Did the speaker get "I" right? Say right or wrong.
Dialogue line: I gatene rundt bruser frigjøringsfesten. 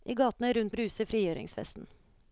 right